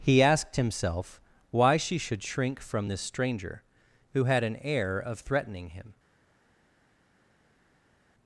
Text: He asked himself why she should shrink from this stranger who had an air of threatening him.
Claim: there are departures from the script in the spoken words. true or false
false